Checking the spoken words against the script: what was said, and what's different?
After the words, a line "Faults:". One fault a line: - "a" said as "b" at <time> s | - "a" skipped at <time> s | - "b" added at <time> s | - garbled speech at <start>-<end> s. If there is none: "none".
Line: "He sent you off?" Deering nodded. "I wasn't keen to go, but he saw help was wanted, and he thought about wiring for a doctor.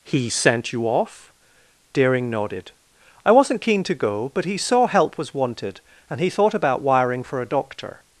"He sent you off?" Deering nodded. "I wasn't keen to go, but he saw help was wanted, and he thought about wiring for a doctor.
Faults:
none